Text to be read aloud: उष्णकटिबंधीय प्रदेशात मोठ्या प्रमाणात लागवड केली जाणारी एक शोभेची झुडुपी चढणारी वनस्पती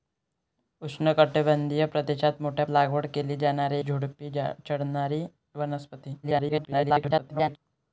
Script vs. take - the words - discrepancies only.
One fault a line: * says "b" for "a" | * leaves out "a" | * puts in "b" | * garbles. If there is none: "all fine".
* leaves out "प्रमाणात"
* leaves out "एक शोभेची"
* garbles